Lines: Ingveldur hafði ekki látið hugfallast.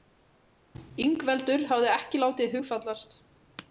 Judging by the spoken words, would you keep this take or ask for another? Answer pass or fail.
pass